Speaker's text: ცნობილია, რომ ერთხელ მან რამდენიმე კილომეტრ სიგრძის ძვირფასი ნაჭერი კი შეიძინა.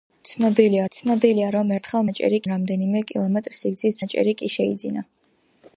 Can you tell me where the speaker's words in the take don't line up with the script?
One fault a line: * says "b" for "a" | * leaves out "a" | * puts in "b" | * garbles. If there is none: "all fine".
* puts in "ცნობილია"
* says "ნაჭერი" for "მან"
* leaves out "ძვირფასი"